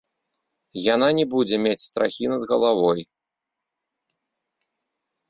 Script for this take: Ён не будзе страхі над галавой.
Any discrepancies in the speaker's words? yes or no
yes